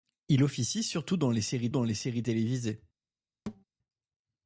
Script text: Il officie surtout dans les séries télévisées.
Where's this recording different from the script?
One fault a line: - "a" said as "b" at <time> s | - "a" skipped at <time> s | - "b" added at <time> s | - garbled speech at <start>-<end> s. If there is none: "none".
- "dans les séries" added at 1.7 s